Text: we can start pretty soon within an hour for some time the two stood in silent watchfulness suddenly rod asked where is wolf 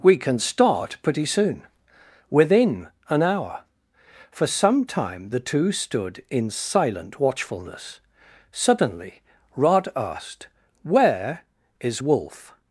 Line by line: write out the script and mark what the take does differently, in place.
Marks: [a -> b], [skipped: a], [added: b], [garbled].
we can start pretty soon within an hour for some time the two stood in silent watchfulness suddenly rod asked where is wolf